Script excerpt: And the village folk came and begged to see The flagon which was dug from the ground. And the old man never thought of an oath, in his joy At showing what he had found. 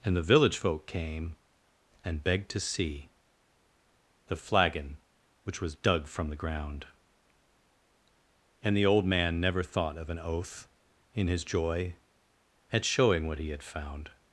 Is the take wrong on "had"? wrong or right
right